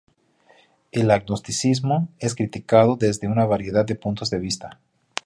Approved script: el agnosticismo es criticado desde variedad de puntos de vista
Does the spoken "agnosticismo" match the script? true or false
true